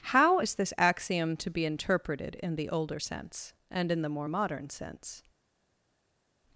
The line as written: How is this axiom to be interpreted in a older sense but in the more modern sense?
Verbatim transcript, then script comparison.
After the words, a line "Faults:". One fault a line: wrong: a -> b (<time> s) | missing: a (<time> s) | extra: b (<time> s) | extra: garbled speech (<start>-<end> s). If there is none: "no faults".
How is this axiom to be interpreted in the older sense and in the more modern sense?
Faults:
wrong: a -> the (2.6 s)
wrong: but -> and (3.7 s)